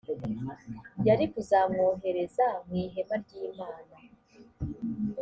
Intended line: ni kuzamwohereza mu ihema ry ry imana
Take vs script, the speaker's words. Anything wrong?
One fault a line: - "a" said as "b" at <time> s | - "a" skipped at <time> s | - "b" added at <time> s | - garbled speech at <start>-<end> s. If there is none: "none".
- "ni" said as "yari" at 1.1 s
- "ry" skipped at 3.3 s